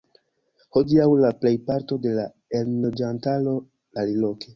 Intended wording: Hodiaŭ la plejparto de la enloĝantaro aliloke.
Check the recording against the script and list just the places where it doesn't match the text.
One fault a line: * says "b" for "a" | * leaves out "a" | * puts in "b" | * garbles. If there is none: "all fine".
all fine